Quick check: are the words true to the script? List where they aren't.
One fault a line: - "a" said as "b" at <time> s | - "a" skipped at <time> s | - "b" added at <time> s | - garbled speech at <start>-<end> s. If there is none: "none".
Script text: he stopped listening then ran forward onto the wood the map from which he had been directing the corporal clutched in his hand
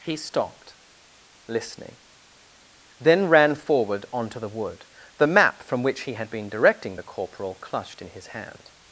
none